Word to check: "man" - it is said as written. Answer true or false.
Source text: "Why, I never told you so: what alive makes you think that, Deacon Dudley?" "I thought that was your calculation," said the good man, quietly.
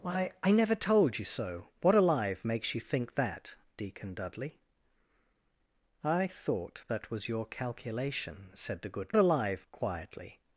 false